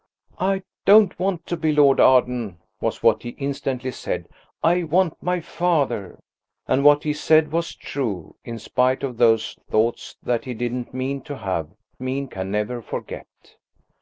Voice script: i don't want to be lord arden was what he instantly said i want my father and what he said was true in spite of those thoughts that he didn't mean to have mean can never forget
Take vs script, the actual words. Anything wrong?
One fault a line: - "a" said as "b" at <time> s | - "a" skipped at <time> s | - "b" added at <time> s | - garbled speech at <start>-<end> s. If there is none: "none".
none